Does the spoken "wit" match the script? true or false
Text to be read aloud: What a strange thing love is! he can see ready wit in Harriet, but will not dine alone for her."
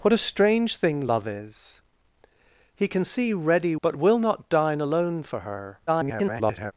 false